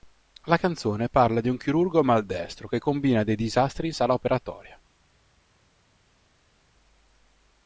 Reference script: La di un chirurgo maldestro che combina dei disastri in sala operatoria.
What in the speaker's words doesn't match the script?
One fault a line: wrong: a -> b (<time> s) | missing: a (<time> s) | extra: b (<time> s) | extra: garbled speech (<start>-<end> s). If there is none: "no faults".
extra: canzone parla (0.6 s)